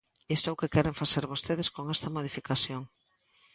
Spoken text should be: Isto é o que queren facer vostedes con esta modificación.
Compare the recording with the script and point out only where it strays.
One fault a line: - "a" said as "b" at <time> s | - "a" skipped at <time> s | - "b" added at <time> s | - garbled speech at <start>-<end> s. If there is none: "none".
none